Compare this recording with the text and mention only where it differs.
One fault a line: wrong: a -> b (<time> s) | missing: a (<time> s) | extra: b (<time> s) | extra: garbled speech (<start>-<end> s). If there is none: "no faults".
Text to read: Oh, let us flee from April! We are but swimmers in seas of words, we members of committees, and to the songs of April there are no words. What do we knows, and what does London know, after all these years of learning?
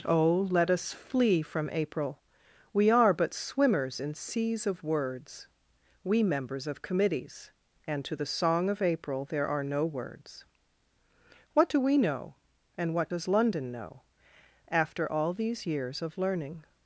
wrong: songs -> song (8.2 s)
wrong: knows -> know (12.0 s)